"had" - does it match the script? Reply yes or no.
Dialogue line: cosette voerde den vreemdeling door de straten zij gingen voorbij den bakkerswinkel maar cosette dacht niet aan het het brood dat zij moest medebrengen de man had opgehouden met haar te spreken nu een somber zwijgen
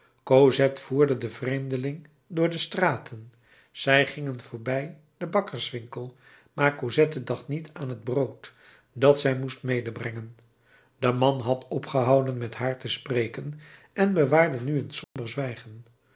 yes